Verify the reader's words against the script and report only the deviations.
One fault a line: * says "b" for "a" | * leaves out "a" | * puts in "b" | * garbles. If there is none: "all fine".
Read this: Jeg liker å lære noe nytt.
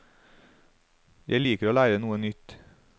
all fine